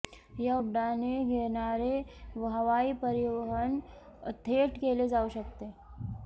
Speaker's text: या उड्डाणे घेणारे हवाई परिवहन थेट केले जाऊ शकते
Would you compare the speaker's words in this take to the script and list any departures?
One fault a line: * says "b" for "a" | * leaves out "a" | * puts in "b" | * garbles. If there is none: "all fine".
all fine